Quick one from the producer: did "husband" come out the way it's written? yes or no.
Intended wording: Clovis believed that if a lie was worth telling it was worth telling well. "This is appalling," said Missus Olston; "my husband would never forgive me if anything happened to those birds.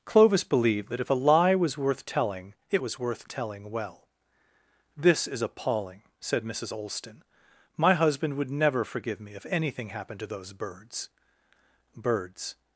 yes